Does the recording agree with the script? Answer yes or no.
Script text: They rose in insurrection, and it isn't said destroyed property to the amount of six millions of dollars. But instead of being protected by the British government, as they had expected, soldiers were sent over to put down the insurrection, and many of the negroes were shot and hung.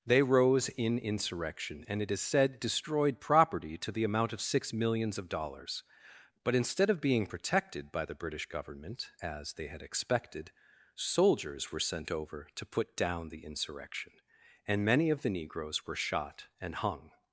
no